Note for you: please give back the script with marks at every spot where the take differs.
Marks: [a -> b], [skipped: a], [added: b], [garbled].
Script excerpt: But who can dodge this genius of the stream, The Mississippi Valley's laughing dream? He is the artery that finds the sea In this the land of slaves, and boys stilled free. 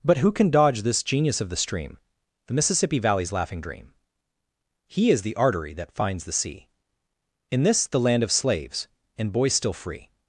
But who can dodge this genius of the stream, The Mississippi Valley's laughing dream? He is the artery that finds the sea In this the land of slaves, and boys [stilled -> still] free.